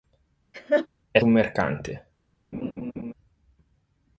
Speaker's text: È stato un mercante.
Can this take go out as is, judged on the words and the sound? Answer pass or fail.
fail